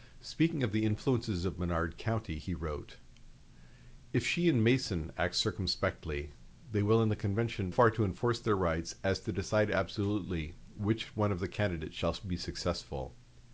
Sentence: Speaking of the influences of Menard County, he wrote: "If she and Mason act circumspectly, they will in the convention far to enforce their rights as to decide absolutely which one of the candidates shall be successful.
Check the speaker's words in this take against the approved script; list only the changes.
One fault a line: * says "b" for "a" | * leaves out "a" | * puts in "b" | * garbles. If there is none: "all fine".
all fine